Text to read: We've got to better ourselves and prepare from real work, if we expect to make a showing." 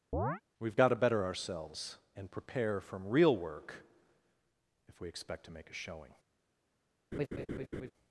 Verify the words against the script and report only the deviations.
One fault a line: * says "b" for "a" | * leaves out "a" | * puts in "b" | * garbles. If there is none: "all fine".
all fine